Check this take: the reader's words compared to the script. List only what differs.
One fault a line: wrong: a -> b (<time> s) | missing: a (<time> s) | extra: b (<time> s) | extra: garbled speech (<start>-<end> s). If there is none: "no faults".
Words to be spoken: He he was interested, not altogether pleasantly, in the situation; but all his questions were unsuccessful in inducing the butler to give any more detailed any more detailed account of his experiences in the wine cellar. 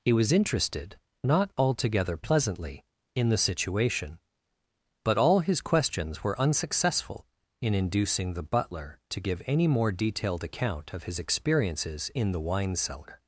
missing: he (0.1 s)
missing: any more detailed (10.4 s)